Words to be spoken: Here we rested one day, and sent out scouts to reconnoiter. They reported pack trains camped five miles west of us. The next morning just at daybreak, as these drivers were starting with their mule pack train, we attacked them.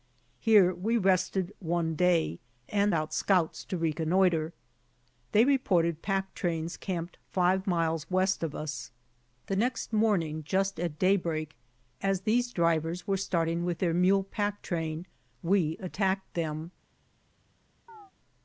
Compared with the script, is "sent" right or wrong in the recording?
wrong